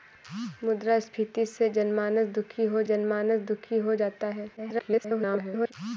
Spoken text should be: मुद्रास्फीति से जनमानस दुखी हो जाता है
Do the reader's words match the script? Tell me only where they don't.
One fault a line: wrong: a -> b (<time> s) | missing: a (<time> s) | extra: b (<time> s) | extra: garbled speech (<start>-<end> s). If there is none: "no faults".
extra: जनमानस दुखी हो (2.8 s)
extra: garbled speech (4.6-5.7 s)